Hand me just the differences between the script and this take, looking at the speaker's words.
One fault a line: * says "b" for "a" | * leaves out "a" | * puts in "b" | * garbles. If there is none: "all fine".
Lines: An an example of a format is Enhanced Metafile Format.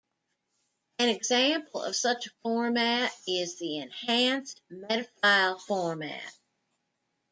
* leaves out "an"
* puts in "such"
* puts in "the"